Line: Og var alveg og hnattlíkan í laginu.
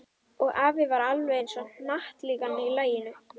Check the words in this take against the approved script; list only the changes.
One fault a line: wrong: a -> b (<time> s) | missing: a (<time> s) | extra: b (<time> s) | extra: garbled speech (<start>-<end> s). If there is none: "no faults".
extra: afi (0.7 s)
extra: eins (1.4 s)